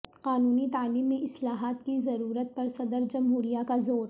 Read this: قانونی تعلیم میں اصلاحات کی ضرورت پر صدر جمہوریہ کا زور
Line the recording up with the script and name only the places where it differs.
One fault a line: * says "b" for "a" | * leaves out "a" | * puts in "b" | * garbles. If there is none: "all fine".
all fine